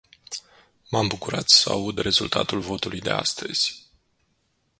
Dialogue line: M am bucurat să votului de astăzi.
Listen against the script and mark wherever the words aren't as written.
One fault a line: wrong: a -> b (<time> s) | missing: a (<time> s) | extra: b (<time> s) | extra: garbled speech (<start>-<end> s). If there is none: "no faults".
extra: aud rezultatul (1.7 s)